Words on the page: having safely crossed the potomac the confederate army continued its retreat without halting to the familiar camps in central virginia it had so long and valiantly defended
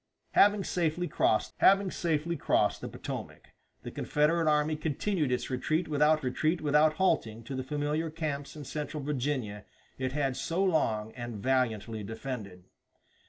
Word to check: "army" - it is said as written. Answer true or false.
true